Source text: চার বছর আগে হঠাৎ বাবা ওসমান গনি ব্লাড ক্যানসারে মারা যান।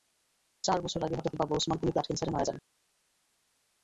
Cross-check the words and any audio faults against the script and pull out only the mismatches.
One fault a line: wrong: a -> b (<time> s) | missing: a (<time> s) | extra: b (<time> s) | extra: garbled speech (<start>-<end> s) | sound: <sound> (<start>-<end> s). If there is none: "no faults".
no faults